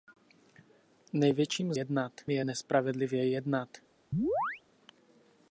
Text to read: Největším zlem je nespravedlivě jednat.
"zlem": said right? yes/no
no